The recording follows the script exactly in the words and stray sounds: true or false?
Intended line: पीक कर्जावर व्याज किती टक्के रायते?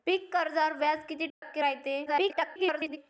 false